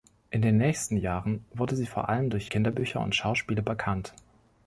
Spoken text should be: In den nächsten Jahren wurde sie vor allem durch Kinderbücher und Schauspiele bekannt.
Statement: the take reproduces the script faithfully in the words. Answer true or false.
true